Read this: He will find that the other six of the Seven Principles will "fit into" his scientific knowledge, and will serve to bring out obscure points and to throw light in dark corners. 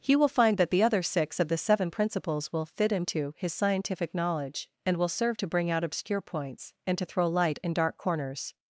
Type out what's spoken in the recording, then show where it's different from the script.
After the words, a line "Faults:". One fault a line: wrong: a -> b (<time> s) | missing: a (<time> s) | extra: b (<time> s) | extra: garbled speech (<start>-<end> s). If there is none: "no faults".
He will find that the other six of the Seven Principles will "fit into" his scientific knowledge, and will serve to bring out obscure points and to throw light in dark corners.
Faults:
no faults